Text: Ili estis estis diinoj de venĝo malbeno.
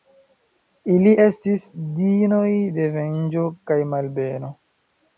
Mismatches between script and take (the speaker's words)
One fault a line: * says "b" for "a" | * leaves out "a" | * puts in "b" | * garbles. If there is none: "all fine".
* leaves out "estis"
* puts in "kaj"